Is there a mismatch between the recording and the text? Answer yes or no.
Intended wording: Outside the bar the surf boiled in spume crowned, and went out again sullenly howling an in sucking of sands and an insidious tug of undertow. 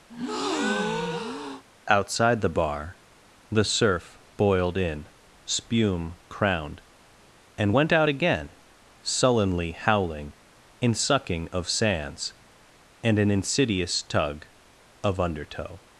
yes